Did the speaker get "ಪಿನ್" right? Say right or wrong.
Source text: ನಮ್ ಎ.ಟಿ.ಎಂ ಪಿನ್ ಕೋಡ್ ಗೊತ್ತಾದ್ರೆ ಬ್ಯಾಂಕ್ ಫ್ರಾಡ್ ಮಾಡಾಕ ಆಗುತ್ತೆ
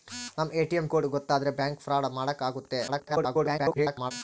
wrong